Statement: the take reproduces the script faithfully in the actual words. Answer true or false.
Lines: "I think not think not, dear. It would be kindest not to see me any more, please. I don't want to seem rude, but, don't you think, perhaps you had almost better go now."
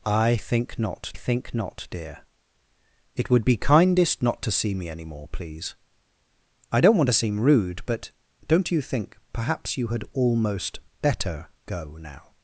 true